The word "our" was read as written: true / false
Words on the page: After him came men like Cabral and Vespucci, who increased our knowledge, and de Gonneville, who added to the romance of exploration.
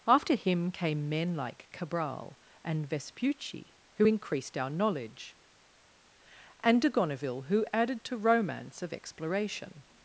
true